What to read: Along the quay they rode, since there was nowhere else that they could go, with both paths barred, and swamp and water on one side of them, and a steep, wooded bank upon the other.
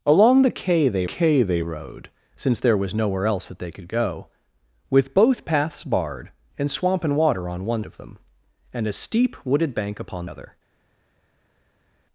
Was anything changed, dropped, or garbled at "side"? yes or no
yes